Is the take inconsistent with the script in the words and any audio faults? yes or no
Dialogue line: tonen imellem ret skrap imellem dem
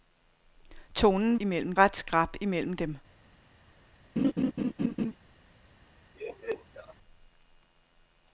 yes